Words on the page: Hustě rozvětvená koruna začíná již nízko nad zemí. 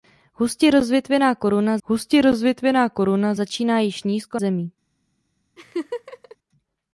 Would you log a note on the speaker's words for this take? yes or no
yes